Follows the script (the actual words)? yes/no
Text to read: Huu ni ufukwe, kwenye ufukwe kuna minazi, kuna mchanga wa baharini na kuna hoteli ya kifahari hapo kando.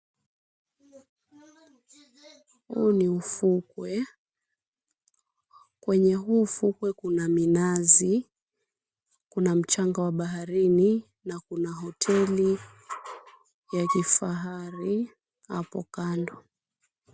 no